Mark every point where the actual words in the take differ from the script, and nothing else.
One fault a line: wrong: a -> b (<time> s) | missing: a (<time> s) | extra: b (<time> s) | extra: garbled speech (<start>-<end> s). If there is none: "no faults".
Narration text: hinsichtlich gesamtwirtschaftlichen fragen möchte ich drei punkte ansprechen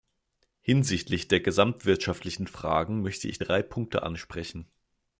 extra: der (1.3 s)